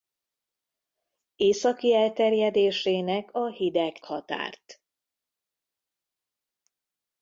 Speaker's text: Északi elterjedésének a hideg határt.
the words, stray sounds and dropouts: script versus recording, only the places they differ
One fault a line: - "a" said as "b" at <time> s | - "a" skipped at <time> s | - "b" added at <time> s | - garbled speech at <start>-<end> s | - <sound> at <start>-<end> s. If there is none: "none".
none